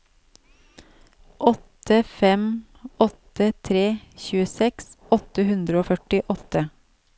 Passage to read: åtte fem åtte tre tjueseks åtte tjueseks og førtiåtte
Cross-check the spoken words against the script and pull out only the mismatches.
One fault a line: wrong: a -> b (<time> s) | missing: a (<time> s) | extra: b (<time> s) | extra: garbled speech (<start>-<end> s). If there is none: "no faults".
wrong: tjueseks -> hundre (5.5 s)